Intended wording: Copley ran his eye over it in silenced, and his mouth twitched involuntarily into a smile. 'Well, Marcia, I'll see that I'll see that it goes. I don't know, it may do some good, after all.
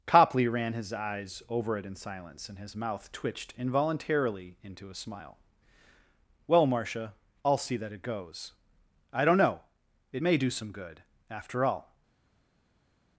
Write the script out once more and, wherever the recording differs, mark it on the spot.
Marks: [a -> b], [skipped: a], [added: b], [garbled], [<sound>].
Copley ran his [eye -> eyes] over it in [silenced, -> silence] and his mouth twitched involuntarily into a smile. 'Well, Marcia, I'll see that [skipped: I'll see that] it goes. I don't know, it may do some good, after all.